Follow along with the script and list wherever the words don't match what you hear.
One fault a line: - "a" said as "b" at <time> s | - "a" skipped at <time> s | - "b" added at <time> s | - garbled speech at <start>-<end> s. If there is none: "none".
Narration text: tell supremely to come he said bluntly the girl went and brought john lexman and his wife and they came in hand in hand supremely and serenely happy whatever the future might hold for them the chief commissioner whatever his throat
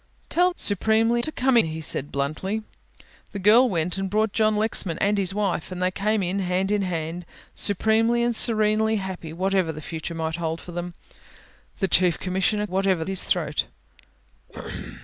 none